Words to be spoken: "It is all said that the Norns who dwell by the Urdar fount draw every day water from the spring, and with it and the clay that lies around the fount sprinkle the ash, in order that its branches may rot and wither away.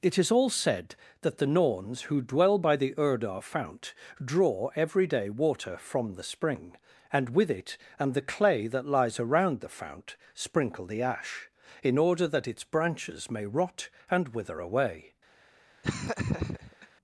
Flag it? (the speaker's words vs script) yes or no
no